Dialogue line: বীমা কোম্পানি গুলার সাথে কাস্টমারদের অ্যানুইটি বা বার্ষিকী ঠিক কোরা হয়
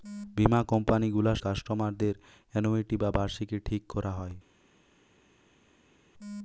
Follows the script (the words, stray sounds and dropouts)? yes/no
no